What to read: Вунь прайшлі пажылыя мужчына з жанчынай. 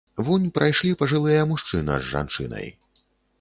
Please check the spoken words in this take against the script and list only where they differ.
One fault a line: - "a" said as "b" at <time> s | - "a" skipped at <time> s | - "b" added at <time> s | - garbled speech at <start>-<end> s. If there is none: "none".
none